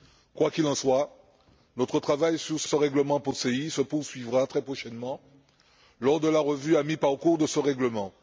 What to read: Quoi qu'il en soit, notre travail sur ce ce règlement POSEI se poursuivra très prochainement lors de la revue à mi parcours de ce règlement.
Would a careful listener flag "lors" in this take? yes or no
no